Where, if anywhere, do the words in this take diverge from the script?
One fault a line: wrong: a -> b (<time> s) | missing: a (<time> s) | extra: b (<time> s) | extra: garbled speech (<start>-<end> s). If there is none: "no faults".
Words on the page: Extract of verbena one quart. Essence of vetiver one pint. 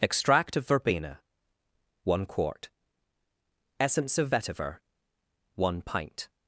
no faults